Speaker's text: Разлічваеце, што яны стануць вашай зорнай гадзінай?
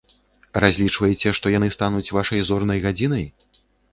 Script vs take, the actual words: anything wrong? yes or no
no